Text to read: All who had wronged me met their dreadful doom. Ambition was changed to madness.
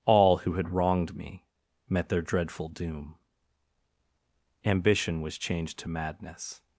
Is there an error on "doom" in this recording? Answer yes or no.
no